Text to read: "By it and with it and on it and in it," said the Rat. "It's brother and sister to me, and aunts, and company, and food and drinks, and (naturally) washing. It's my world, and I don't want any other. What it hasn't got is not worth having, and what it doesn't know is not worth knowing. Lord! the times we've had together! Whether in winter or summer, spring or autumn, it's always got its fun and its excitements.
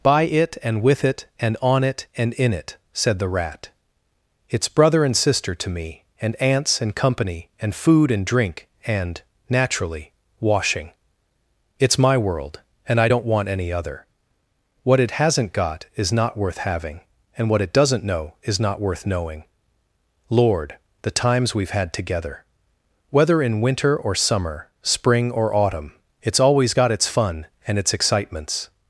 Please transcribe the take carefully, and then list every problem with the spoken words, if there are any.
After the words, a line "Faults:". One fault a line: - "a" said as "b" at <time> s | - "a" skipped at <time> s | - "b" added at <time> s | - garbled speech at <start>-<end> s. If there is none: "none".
"By it and with it and on it and in it," said the Rat. "It's brother and sister to me, and aunts, and company, and food and drink, and (naturally) washing. It's my world, and I don't want any other. What it hasn't got is not worth having, and what it doesn't know is not worth knowing. Lord! the times we've had together! Whether in winter or summer, spring or autumn, it's always got its fun and its excitements.
Faults:
- "drinks" said as "drink" at 8.2 s